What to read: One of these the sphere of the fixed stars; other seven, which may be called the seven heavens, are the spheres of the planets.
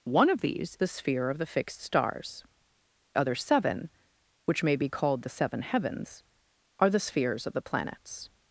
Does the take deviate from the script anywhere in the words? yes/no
no